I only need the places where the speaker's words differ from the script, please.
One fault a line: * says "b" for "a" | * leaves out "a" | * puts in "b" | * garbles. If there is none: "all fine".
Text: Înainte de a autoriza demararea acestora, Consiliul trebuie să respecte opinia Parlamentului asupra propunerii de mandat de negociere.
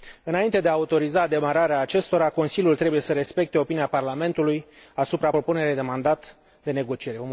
all fine